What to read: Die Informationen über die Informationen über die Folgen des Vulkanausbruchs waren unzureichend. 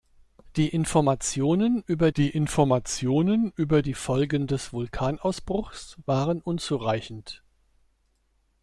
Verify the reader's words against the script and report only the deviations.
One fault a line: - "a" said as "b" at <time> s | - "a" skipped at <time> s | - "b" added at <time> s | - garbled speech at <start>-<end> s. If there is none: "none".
none